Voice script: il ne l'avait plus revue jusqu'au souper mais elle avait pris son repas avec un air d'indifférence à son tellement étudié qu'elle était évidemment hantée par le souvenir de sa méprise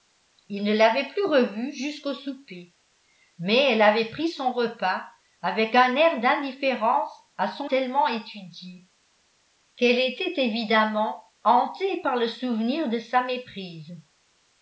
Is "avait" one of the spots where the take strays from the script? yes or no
no